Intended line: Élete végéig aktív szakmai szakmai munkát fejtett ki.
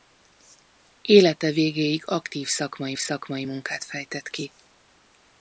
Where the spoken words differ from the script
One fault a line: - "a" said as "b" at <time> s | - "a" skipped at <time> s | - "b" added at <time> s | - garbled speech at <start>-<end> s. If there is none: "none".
none